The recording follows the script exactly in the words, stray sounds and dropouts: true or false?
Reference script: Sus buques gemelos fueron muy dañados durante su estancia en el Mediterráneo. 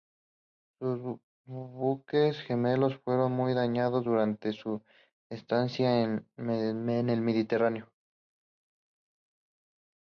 true